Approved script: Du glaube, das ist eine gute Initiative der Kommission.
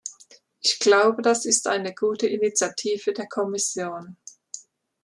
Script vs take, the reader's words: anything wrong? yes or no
yes